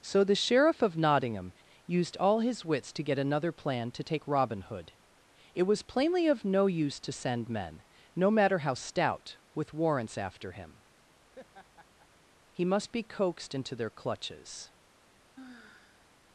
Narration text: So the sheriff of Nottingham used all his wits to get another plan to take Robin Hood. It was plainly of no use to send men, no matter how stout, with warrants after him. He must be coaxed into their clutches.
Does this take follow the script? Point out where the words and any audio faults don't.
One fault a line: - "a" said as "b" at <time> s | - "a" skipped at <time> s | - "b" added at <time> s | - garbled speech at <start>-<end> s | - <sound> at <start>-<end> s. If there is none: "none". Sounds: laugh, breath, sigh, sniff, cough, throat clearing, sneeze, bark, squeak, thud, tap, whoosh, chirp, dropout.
- laugh at 11.3-12.1 s
- sigh at 15.4-16.1 s